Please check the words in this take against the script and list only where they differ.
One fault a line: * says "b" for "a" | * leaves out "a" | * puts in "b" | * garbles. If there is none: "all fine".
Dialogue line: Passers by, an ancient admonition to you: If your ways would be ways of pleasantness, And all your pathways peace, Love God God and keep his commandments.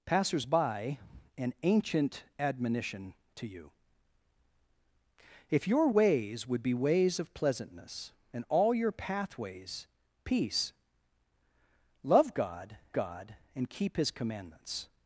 all fine